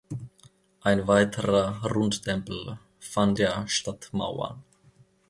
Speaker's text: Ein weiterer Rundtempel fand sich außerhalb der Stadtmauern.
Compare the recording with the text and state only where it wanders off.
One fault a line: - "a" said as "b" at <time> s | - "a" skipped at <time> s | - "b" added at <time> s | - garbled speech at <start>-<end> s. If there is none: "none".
- "sich außerhalb" skipped at 3.4 s